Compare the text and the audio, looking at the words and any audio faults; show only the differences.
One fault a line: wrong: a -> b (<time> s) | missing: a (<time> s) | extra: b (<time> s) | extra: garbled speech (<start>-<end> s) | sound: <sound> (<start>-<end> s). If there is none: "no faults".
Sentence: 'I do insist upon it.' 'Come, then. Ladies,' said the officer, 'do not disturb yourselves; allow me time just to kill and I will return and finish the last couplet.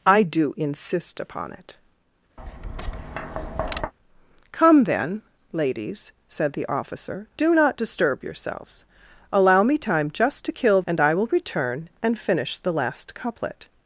sound: tap (2.4-3.9 s)